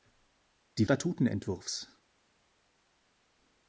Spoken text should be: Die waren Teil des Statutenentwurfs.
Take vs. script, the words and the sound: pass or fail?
fail